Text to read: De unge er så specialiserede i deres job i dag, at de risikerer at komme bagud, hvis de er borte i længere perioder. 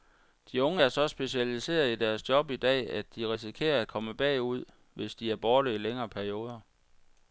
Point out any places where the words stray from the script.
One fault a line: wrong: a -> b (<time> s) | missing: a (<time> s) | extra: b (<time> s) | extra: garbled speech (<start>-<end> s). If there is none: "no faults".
no faults